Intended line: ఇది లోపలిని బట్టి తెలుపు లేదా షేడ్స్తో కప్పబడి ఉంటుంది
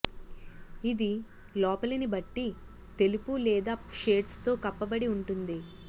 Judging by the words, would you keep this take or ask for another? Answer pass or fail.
pass